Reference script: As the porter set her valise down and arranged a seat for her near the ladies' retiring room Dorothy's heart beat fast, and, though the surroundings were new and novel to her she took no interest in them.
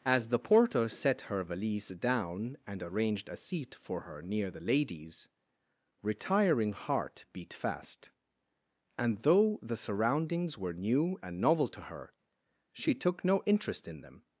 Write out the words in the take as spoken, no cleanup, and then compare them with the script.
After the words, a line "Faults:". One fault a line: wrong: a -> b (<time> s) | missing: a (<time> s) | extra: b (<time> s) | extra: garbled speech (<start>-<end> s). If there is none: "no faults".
As the porter set her valise down and arranged a seat for her near the ladies' retiring heart beat fast, and, though the surroundings were new and novel to her she took no interest in them.
Faults:
missing: room Dorothy's (6.7 s)